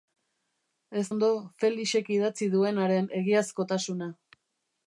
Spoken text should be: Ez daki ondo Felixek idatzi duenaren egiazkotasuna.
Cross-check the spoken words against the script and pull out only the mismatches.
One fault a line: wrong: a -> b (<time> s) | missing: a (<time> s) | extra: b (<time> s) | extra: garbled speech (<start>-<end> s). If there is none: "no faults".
missing: daki (1.0 s)